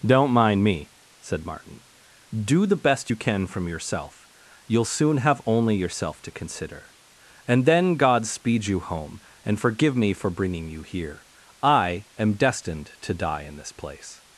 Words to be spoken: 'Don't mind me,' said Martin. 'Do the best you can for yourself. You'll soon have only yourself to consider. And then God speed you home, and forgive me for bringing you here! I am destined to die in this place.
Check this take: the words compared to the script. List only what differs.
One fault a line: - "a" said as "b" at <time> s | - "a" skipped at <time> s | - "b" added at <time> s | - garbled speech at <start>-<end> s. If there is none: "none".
- "for" said as "from" at 3.5 s